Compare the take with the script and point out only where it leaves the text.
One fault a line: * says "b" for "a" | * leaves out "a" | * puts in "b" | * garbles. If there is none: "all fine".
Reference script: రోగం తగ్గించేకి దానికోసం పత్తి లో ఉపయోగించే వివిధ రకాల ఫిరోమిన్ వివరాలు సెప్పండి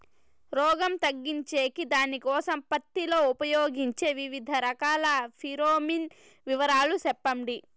all fine